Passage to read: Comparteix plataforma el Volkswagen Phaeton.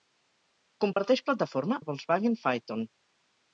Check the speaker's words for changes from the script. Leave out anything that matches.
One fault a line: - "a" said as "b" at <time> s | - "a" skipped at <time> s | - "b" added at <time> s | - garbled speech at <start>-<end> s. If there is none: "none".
none